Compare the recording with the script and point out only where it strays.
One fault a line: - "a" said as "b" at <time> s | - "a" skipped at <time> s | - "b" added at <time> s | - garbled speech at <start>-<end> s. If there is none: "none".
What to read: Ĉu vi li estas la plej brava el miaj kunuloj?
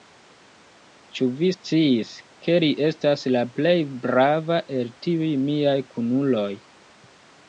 - "sciis ke" added at 1.5 s
- "tiuj" added at 5.1 s